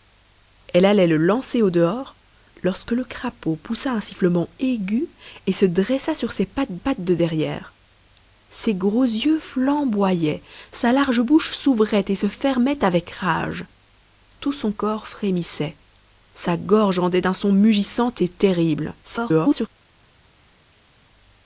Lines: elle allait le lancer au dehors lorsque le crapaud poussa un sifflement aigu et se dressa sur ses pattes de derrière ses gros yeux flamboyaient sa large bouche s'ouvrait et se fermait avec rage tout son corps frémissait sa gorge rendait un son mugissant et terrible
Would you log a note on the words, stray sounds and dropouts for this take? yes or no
yes